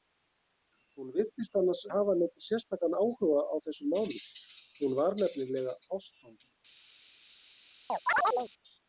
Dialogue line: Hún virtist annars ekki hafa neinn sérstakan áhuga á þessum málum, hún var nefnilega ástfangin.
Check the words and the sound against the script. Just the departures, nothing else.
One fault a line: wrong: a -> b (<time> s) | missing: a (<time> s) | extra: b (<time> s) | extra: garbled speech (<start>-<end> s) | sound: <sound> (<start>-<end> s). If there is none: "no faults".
missing: ekki (1.8 s)
sound: chirp (7.9-8.5 s)